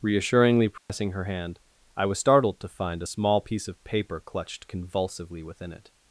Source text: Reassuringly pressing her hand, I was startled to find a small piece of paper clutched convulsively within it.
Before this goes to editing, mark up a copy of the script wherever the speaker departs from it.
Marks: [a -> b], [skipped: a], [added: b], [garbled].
Reassuringly pressing her hand, I was startled to find a small piece of paper clutched convulsively within it.